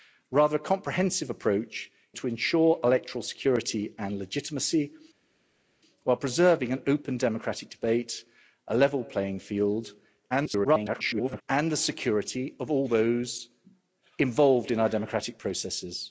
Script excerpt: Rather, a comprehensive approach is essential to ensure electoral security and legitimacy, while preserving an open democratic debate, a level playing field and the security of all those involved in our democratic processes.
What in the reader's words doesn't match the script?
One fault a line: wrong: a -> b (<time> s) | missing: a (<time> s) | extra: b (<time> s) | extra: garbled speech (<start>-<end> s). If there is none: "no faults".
missing: is essential (1.9 s)
extra: garbled speech (10.3-11.4 s)